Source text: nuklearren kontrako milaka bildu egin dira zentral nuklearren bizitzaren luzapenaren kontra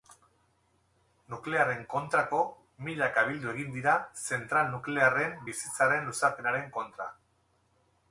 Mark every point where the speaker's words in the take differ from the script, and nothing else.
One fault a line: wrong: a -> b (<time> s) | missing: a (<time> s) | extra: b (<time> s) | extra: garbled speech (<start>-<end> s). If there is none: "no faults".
no faults